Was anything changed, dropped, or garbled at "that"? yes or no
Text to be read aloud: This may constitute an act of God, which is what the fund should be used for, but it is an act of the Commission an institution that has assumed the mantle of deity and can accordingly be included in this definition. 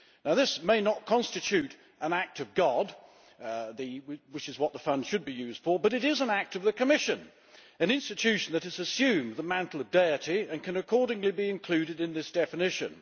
no